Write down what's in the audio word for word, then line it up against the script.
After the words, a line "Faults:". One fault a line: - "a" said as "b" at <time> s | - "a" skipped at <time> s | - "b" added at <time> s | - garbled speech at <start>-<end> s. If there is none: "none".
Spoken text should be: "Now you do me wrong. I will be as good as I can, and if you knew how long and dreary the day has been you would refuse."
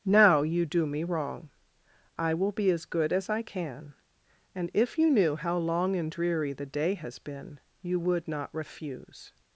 "Now you do me wrong. I will be as good as I can, and if you knew how long and dreary the day has been you would not refuse."
Faults:
- "not" added at 8.3 s